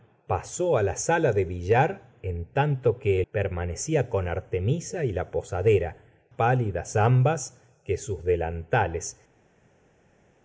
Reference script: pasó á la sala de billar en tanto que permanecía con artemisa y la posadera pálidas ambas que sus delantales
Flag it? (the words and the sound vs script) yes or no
no